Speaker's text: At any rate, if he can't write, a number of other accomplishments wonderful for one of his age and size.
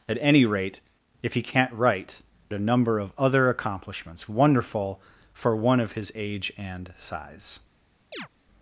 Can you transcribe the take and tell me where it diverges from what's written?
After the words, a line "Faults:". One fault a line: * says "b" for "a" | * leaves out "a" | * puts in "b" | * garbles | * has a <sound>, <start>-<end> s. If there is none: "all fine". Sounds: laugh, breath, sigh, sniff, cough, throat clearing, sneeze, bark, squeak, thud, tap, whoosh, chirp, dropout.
At any rate, if he can't write, a number of other accomplishments wonderful for one of his age and size.
Faults:
* has a chirp, 8.1-8.3 s